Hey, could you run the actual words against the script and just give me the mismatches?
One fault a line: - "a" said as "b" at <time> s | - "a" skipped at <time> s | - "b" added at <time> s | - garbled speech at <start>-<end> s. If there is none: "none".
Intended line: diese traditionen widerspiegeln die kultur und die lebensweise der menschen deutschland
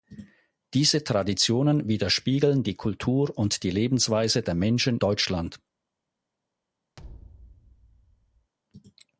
none